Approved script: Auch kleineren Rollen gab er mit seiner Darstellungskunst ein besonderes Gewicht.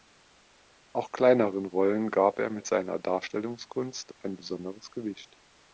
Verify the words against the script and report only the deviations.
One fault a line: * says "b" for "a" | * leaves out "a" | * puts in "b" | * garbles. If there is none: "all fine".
all fine